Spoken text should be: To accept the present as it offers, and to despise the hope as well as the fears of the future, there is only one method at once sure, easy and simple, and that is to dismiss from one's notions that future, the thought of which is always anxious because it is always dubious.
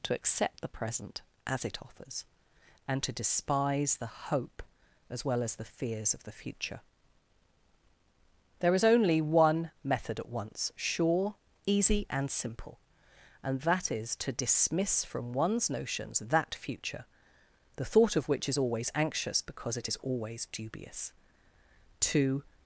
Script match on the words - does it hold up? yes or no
no